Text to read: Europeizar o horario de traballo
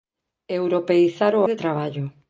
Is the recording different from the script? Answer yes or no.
yes